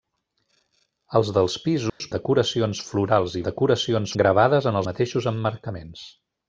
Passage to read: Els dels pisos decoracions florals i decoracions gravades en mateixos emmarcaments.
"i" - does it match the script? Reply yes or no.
yes